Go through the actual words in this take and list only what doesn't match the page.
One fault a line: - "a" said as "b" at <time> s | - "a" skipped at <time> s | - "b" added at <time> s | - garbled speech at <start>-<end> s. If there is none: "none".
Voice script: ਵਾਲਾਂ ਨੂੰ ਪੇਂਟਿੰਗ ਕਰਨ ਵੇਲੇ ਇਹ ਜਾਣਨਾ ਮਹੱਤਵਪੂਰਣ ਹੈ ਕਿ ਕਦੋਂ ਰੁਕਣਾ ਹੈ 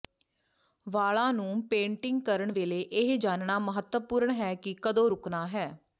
none